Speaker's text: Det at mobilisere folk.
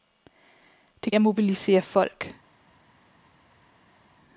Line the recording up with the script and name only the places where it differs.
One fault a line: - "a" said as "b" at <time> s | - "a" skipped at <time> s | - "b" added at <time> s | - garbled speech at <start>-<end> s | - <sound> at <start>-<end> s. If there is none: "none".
none